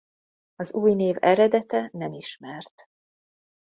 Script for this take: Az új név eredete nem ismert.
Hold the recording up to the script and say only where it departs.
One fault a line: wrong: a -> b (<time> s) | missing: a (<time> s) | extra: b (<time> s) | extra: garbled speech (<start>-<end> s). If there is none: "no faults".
no faults